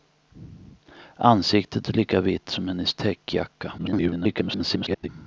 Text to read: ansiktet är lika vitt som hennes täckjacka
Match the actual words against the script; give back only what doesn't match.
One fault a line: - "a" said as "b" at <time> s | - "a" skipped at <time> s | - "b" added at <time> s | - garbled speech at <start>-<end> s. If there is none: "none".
- garbled speech at 3.8-5.1 s